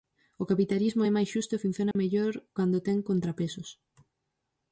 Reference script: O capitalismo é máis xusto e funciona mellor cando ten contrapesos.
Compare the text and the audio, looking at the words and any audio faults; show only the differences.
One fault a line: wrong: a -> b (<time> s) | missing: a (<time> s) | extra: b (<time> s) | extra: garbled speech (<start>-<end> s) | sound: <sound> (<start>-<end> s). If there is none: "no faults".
sound: dropout (1.9-2.0 s)